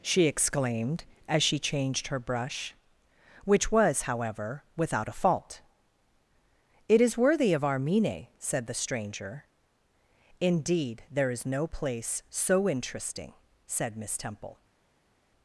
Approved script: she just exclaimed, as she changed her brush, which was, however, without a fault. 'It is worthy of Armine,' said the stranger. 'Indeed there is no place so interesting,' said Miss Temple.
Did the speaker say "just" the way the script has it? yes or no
no